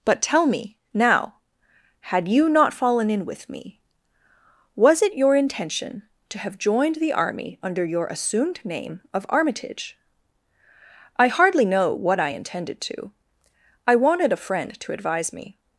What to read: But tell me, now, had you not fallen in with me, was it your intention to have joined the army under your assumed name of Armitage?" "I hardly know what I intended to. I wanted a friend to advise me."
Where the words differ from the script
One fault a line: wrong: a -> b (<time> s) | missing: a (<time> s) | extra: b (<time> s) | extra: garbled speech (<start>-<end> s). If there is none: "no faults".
no faults